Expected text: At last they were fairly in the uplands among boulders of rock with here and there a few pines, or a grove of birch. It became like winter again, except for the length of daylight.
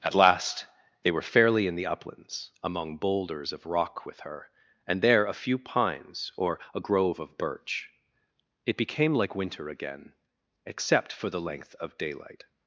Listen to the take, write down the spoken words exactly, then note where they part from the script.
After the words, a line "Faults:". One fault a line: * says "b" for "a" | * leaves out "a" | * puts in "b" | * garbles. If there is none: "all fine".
At last they were fairly in the uplands among boulders of rock with her and there a few pines, or a grove of birch. It became like winter again, except for the length of daylight.
Faults:
* says "her" for "here"